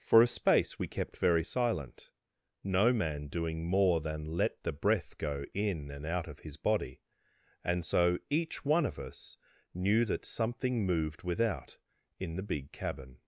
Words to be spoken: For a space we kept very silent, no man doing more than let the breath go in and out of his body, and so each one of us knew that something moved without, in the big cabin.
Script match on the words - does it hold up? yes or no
yes